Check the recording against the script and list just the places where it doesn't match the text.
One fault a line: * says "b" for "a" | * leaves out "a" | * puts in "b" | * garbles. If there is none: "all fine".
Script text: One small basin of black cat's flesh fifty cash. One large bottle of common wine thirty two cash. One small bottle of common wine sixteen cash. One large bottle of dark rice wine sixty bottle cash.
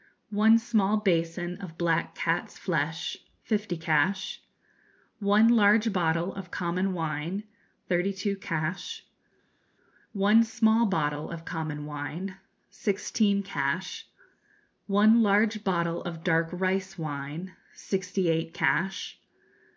* says "eight" for "bottle"